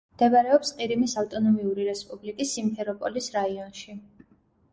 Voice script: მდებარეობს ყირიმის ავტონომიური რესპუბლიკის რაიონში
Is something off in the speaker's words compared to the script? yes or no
yes